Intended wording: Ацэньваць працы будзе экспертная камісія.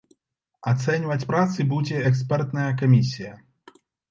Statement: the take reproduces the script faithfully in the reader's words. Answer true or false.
true